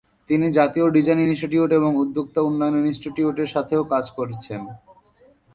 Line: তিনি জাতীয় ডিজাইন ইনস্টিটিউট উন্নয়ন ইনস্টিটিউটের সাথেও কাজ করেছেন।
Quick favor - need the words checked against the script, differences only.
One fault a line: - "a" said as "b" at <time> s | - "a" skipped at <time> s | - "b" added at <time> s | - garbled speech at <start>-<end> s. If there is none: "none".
- "এবং উদ্যোক্তা" added at 1.7 s